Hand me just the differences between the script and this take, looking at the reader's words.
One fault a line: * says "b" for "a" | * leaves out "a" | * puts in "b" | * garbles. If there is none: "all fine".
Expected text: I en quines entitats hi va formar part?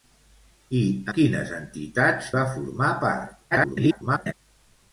* leaves out "en"
* leaves out "hi"
* garbles